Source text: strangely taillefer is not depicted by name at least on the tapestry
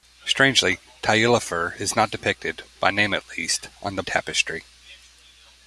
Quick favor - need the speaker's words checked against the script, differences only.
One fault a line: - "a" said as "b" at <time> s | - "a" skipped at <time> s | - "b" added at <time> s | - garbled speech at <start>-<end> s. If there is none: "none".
none